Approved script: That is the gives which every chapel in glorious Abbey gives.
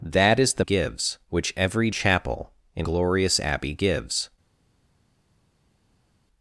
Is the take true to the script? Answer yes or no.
yes